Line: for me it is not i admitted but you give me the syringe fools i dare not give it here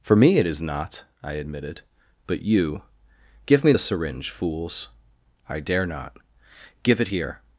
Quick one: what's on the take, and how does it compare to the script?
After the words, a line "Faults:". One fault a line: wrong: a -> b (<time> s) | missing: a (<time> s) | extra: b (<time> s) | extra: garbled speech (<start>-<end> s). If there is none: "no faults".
for me it is not i admitted but you give me the syringe fools i dare not give it here
Faults:
no faults